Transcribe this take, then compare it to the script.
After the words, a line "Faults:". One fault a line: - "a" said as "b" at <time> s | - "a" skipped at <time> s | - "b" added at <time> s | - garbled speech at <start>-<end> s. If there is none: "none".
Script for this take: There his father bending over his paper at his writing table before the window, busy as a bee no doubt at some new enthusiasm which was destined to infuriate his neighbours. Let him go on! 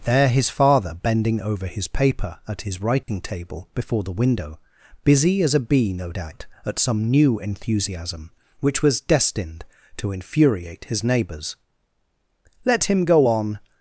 There his father bending over his paper at his writing table before the window, busy as a bee no doubt at some new enthusiasm which was destined to infuriate his neighbours. Let him go on!
Faults:
none